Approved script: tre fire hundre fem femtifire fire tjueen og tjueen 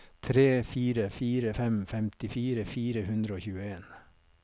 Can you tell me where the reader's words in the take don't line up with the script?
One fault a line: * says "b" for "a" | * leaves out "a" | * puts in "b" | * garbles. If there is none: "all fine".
* says "fire" for "hundre"
* says "hundre" for "tjueen"